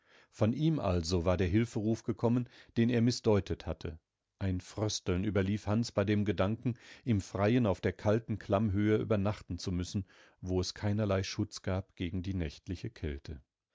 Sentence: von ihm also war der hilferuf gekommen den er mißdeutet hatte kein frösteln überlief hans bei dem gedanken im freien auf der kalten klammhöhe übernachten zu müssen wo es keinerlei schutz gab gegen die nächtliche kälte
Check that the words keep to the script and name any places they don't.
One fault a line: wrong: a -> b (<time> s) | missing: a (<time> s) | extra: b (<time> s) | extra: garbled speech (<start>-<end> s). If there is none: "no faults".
wrong: kein -> ein (4.4 s)